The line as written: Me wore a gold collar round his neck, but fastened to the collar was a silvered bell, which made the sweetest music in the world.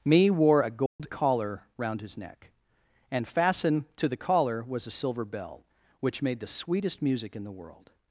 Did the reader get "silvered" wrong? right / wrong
wrong